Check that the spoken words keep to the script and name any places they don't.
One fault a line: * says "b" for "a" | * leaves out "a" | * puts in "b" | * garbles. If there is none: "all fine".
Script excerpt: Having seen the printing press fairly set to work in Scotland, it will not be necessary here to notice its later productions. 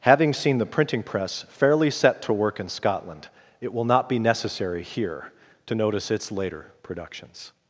all fine